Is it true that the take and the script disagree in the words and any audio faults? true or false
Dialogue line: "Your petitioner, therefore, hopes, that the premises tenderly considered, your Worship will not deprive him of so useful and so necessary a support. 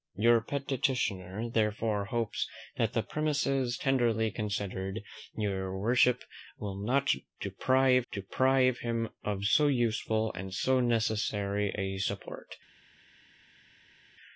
true